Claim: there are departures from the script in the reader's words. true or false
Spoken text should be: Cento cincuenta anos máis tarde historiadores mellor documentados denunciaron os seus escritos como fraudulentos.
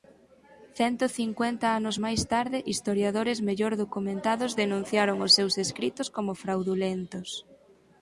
false